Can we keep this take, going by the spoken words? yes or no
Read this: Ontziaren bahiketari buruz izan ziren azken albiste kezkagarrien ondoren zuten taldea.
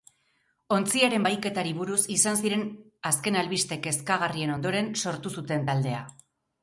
no